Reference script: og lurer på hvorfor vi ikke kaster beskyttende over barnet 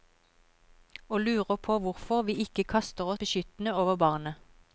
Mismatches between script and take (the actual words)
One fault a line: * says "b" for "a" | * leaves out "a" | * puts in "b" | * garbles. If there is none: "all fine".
all fine